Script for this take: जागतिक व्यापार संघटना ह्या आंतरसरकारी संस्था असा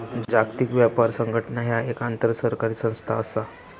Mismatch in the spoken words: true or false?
true